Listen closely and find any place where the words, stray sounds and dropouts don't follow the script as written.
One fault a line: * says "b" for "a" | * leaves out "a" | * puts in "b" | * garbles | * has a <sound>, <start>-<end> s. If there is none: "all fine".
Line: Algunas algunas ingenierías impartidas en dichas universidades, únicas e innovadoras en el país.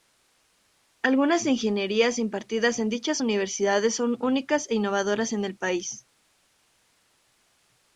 * leaves out "algunas"
* puts in "son"